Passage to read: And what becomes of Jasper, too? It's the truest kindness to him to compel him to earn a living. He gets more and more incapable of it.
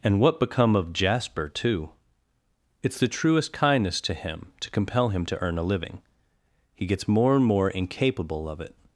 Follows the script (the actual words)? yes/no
no